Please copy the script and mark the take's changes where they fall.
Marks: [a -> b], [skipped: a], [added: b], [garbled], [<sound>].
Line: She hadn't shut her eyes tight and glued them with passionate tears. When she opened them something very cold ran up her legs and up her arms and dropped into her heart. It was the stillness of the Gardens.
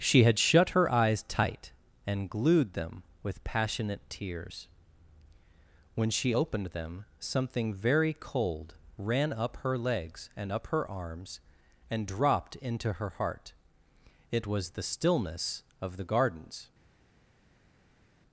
She [hadn't -> had] shut her eyes tight and glued them with passionate tears. When she opened them something very cold ran up her legs and up her arms and dropped into her heart. It was the stillness of the Gardens.